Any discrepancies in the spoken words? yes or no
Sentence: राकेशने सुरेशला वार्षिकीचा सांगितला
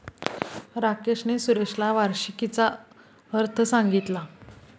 yes